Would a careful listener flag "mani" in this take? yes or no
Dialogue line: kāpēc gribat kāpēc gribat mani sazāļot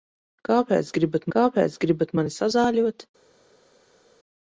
no